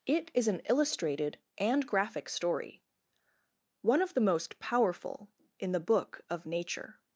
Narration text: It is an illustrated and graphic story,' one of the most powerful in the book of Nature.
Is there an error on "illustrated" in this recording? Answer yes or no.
no